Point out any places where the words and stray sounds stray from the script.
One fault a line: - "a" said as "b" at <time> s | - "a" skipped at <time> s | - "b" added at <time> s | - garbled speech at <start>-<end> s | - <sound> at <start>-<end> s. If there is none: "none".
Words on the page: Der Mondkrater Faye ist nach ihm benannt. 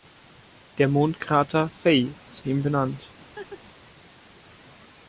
- "nach" skipped at 2.5 s
- laugh at 3.4-3.6 s